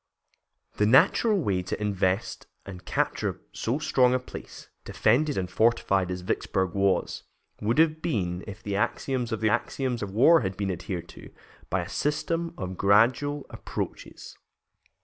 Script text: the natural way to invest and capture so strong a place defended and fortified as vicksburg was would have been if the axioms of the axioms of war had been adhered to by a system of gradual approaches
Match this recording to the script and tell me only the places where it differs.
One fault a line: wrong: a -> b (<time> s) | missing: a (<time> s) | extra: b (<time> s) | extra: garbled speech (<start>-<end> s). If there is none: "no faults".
no faults